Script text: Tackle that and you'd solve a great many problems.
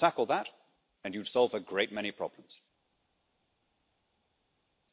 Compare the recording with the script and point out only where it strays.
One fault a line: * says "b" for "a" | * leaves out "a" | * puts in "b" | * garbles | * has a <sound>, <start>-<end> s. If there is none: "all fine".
all fine